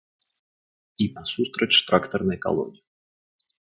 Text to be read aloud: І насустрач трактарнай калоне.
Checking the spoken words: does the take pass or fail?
pass